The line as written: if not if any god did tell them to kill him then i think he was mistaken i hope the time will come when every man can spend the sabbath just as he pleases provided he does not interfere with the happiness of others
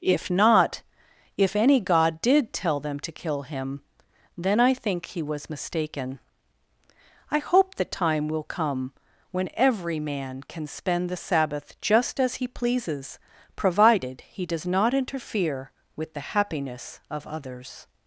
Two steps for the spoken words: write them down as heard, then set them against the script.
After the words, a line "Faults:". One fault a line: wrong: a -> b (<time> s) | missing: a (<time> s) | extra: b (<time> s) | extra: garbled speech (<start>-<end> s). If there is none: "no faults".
if not if any god did tell them to kill him then i think he was mistaken i hope the time will come when every man can spend the sabbath just as he pleases provided he does not interfere with the happiness of others
Faults:
no faults